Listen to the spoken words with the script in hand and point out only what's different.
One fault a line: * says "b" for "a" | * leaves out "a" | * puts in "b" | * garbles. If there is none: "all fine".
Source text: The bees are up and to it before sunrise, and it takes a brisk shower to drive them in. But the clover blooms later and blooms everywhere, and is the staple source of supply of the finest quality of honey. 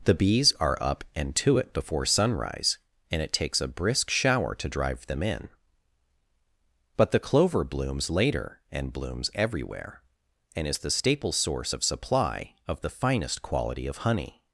all fine